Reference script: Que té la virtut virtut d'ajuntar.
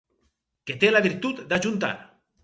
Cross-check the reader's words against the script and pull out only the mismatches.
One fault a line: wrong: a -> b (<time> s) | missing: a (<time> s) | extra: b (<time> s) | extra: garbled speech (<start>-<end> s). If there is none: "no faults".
missing: virtut (1.4 s)